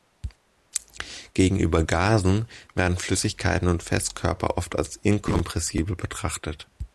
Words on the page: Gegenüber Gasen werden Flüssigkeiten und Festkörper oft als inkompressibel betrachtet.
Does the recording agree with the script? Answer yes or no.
yes